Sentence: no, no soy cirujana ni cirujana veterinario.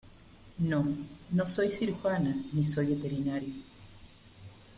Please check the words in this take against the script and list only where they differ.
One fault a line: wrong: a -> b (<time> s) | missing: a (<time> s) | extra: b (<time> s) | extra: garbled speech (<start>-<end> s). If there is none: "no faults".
wrong: cirujana -> soy (2.6 s)